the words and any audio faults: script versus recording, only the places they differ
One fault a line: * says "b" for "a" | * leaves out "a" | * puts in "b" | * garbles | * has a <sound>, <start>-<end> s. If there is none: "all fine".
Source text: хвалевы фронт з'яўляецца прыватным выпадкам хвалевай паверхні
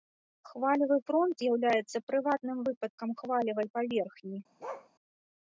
* has a bark, 4.6-4.9 s